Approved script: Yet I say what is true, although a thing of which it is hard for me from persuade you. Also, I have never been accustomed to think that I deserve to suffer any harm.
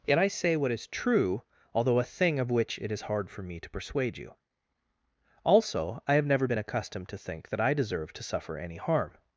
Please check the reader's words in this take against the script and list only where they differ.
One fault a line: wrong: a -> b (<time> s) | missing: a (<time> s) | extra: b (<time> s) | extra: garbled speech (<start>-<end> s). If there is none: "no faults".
wrong: from -> to (3.6 s)